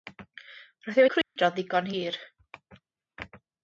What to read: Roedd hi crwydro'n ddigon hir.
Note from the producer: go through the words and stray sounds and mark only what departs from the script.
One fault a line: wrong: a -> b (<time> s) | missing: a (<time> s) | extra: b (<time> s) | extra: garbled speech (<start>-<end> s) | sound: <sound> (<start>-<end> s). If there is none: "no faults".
sound: dropout (1.2-1.4 s)